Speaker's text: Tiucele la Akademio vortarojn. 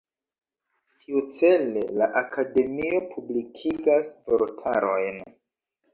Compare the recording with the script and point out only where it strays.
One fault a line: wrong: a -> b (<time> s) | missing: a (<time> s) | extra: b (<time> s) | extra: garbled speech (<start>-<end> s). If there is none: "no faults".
extra: publikigas (3.2 s)